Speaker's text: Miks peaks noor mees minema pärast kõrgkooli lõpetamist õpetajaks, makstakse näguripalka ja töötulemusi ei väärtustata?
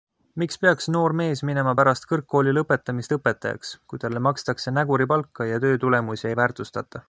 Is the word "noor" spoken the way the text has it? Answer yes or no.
yes